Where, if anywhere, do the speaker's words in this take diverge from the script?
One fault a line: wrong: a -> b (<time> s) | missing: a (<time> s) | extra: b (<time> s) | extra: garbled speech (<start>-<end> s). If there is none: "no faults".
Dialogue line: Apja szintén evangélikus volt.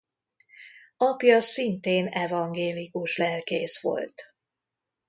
extra: lelkész (3.2 s)